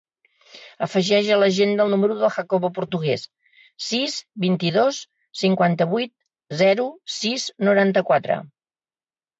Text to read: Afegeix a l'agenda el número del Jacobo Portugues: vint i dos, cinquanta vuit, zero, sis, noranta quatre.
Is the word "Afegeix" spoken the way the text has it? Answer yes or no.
yes